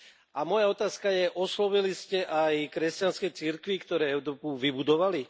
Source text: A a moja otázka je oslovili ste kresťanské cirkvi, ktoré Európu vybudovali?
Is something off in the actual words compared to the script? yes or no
yes